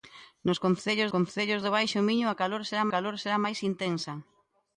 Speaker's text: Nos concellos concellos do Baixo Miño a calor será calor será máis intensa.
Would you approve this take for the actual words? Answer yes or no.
yes